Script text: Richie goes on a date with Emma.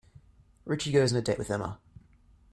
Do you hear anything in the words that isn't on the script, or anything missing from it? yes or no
no